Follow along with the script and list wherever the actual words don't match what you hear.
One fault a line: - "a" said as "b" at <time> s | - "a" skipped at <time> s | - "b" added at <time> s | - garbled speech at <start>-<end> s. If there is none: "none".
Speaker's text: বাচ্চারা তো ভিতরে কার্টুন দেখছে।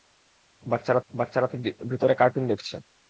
- "বাচ্চারা" added at 1.1 s